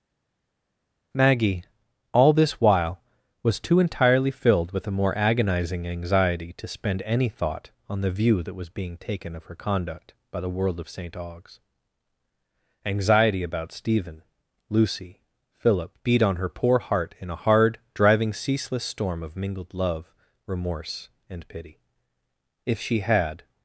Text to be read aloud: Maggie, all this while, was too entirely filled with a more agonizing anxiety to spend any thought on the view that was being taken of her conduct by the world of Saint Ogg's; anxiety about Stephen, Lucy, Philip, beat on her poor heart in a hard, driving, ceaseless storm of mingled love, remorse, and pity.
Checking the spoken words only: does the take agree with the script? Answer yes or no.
no